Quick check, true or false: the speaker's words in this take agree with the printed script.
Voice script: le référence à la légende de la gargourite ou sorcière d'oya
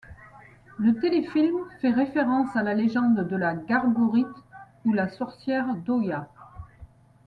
false